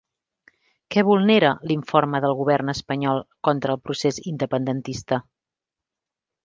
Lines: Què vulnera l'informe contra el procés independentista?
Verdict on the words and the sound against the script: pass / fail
fail